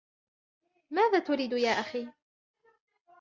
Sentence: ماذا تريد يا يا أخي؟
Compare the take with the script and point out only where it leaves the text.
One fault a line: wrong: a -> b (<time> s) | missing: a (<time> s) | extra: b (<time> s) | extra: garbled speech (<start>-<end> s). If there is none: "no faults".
missing: يا (1.7 s)